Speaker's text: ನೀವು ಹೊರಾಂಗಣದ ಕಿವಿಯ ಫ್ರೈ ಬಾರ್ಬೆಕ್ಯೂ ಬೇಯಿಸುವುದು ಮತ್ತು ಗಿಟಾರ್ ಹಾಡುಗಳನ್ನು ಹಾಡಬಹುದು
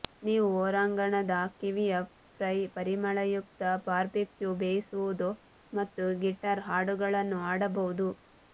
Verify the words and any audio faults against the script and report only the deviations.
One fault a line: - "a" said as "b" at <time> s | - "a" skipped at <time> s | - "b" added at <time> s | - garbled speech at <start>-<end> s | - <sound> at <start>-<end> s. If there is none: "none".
- "ಪರಿಮಳಯುಕ್ತ" added at 2.7 s